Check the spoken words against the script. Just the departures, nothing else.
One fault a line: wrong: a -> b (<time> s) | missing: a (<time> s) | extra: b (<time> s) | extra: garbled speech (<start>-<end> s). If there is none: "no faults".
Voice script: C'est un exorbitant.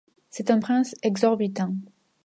extra: prince (0.6 s)